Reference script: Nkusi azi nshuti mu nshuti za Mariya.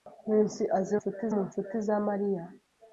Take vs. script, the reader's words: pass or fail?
pass